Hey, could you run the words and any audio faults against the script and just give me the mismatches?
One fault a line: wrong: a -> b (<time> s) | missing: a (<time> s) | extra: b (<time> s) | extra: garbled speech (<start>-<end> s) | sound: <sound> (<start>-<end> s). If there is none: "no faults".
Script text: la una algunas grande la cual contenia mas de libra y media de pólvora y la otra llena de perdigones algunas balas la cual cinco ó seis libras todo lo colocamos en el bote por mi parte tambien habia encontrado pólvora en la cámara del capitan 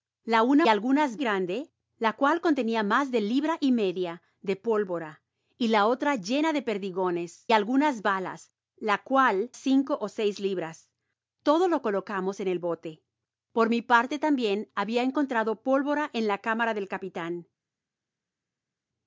no faults